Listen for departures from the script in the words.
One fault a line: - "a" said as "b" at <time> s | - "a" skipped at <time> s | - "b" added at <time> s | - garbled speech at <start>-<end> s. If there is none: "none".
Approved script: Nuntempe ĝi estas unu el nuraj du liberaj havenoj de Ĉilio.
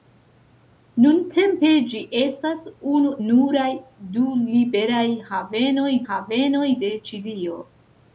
- "el" skipped at 3.1 s
- "havenoj" added at 6.1 s